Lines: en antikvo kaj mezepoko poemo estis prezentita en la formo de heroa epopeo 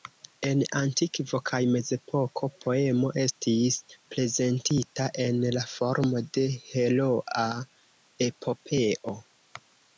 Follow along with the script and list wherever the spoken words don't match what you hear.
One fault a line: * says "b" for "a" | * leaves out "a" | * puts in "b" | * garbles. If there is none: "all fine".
all fine